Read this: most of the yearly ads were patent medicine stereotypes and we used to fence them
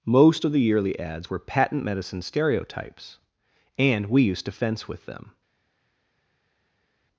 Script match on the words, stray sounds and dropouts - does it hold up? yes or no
no